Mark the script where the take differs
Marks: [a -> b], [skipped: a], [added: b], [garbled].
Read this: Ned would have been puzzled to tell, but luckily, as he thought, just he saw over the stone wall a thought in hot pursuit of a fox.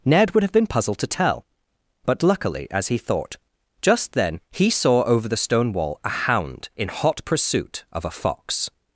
Ned would have been puzzled to tell, but luckily, as he thought, just [added: then] he saw over the stone wall a [thought -> hound] in hot pursuit of a fox.